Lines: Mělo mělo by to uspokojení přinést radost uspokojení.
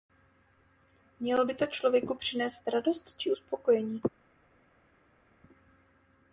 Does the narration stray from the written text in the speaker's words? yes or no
yes